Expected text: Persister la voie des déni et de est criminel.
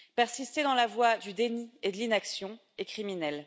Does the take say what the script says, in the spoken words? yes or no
no